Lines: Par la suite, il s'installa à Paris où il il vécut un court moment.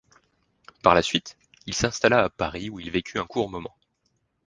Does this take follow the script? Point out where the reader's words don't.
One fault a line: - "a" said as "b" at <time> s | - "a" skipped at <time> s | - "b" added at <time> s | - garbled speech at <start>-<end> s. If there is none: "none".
- "il" skipped at 2.9 s